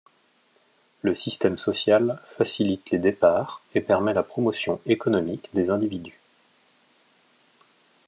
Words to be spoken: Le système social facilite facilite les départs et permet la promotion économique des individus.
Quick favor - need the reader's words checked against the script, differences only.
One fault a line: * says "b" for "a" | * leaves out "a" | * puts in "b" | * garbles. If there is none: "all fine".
* leaves out "facilite"